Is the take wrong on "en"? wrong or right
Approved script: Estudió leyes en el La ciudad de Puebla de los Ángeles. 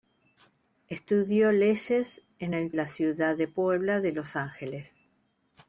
right